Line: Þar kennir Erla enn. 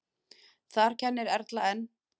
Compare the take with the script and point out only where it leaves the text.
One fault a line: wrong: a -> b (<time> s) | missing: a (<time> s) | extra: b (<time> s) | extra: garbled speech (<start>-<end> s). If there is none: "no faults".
no faults